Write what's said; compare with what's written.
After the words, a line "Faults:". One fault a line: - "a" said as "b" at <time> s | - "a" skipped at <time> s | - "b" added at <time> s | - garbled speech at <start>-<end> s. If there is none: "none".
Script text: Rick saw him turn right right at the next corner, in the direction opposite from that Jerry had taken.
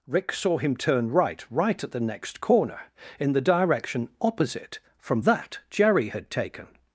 Rick saw him turn right right at the next corner, in the direction opposite from that Jerry had taken.
Faults:
none